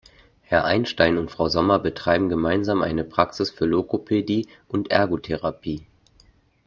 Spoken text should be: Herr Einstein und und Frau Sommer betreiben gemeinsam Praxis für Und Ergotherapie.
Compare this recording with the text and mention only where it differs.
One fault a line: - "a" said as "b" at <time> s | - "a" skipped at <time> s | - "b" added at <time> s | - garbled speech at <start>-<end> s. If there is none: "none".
- "und" skipped at 1.3 s
- "eine" added at 2.8 s
- "Logopädie" added at 3.7 s